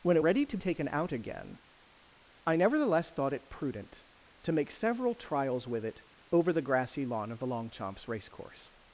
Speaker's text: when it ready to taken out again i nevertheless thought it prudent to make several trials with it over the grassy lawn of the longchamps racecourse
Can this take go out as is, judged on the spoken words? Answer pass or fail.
pass